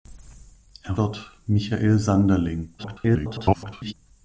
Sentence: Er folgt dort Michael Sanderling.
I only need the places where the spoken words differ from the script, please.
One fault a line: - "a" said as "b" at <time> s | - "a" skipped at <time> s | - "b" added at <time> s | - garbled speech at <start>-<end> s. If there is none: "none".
- "folgt" skipped at 0.9 s
- garbled speech at 2.8-3.9 s